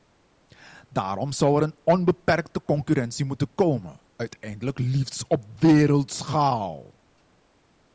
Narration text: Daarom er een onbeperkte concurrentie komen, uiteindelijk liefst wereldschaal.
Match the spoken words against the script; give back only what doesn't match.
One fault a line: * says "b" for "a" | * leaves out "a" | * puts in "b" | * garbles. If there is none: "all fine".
* puts in "zou"
* puts in "moeten"
* puts in "op"